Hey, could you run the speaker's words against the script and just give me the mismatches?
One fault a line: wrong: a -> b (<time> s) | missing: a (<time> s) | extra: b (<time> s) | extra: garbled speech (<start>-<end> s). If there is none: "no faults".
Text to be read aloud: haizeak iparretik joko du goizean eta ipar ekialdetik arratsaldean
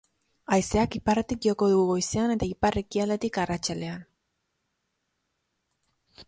no faults